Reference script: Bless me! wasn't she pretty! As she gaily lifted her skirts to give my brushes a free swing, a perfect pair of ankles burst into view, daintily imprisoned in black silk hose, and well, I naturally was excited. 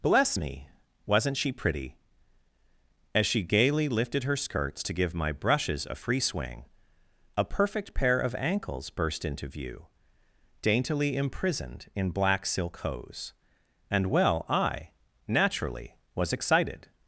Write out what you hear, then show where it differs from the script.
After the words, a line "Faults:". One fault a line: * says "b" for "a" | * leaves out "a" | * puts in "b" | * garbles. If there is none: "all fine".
Bless me! wasn't she pretty! As she gaily lifted her skirts to give my brushes a free swing, a perfect pair of ankles burst into view, daintily imprisoned in black silk hose, and well, I naturally was excited.
Faults:
all fine